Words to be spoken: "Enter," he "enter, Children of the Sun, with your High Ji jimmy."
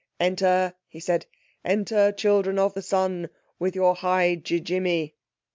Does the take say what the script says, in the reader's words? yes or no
no